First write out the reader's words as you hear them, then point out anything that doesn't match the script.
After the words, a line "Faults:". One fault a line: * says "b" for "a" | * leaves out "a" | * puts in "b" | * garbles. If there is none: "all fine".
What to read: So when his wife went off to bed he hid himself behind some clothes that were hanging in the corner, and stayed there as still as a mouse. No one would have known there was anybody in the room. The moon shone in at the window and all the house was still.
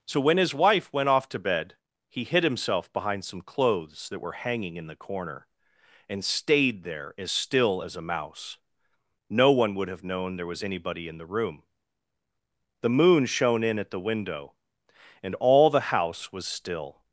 So when his wife went off to bed he hid himself behind some clothes that were hanging in the corner, and stayed there as still as a mouse. No one would have known there was anybody in the room. The moon shone in at the window and all the house was still.
Faults:
all fine